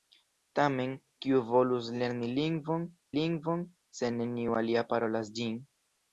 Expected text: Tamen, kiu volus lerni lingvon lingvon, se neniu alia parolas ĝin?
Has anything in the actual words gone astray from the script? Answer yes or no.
no